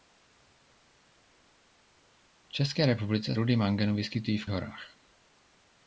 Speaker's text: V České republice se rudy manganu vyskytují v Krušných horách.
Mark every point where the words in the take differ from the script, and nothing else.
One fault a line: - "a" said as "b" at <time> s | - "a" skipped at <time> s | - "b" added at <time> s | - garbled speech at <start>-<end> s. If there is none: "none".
- "se" skipped at 3.4 s
- "Krušných" skipped at 4.5 s